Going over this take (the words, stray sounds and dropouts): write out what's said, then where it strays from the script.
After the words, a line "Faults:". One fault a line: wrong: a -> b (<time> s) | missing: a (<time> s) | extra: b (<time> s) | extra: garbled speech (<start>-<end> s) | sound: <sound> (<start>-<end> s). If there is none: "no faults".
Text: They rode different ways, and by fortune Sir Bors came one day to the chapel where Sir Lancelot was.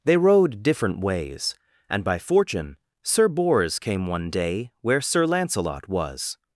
They rode different ways, and by fortune Sir Bors came one day where Sir Lancelot was.
Faults:
missing: to the chapel (4.7 s)